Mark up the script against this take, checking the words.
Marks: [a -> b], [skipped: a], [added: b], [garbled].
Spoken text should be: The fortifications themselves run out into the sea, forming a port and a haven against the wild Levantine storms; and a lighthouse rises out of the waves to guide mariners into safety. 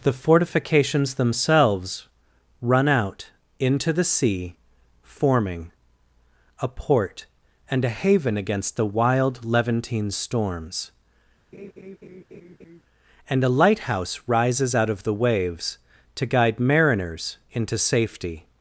The fortifications themselves run out into the sea, forming a port and a haven against the wild Levantine storms; and a lighthouse rises out of the waves to guide mariners into safety.